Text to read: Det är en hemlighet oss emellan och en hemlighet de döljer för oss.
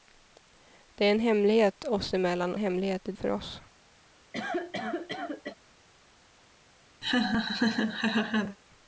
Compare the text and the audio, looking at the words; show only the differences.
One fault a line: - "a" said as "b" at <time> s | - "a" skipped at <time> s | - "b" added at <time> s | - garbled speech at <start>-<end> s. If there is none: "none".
- "och en" skipped at 2.5 s
- "döljer" skipped at 3.1 s